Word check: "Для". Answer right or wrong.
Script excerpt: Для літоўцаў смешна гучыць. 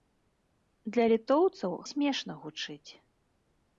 right